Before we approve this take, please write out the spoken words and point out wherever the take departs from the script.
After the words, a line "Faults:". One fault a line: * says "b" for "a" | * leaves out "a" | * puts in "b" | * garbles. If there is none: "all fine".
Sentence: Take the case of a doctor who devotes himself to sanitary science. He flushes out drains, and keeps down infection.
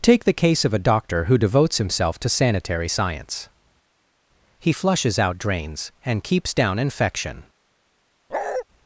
Take the case of a doctor who devotes himself to sanitary science. He flushes out drains, and keeps down infection.
Faults:
all fine